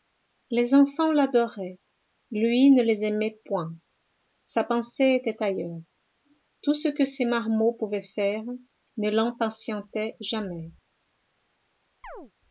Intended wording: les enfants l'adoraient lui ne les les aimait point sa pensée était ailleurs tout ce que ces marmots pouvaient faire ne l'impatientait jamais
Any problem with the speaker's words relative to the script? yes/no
yes